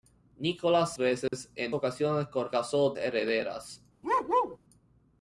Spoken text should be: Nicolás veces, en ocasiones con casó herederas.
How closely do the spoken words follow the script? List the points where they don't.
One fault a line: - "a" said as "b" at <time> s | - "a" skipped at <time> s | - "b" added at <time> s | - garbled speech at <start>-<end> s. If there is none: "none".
none